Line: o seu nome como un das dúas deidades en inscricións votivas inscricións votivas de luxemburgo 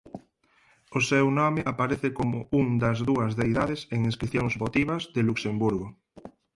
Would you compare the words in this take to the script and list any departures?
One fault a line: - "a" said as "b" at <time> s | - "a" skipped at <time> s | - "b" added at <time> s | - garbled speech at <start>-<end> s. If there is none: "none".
- "aparece" added at 1.7 s
- "inscricións votivas" skipped at 5.0 s